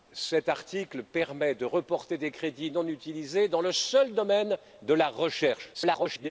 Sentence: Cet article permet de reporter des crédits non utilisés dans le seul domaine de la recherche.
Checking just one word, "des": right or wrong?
right